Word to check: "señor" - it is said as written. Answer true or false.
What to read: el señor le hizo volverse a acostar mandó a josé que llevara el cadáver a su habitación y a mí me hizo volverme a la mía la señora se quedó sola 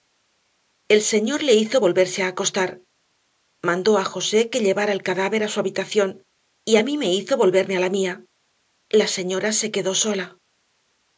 true